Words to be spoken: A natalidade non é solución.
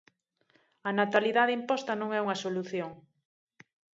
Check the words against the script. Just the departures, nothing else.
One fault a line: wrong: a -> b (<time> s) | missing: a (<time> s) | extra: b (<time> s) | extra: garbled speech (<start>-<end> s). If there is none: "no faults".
extra: imposta (1.6 s)
extra: unha (2.2 s)